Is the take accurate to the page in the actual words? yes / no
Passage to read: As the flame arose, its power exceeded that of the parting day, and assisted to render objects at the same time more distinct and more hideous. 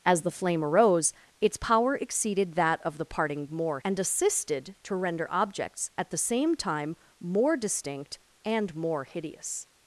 no